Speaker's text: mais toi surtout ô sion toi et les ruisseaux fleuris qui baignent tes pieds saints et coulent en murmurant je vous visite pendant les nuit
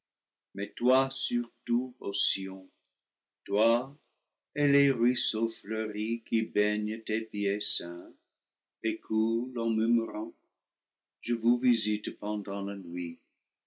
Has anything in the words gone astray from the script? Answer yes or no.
yes